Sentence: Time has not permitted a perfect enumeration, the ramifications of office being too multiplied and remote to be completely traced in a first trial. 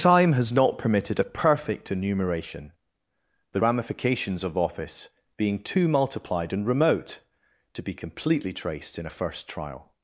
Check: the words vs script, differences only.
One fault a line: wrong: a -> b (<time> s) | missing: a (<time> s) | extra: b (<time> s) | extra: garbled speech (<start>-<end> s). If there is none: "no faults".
no faults